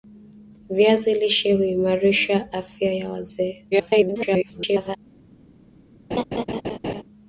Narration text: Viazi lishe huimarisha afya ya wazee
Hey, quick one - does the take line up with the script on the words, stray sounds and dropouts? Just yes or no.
no